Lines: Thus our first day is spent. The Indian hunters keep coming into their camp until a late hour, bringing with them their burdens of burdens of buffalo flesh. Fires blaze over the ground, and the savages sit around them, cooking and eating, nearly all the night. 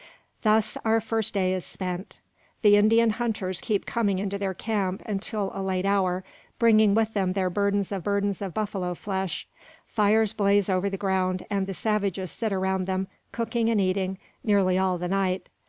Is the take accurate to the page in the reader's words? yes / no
yes